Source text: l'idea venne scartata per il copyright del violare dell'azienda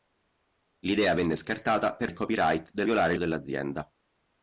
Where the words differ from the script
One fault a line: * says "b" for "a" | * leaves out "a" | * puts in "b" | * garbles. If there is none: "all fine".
all fine